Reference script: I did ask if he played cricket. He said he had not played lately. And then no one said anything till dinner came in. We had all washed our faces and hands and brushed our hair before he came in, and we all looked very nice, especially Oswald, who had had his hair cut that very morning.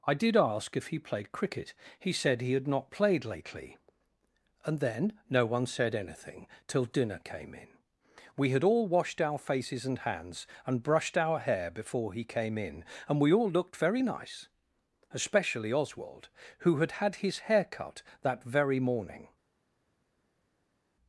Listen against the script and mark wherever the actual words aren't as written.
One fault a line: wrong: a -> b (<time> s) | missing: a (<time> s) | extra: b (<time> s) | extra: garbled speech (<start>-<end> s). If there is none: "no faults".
no faults